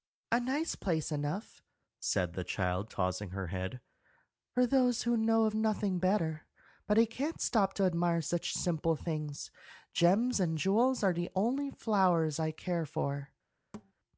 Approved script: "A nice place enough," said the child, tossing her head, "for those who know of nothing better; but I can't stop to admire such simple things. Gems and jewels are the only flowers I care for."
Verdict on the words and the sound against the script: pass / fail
fail